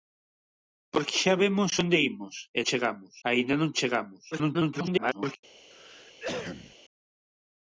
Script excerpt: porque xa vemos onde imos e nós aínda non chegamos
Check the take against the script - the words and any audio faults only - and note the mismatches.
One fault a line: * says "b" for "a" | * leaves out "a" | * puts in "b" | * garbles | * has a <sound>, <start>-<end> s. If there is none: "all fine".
* says "chegamos" for "nós"
* garbles
* has a cough, 5.7-6.8 s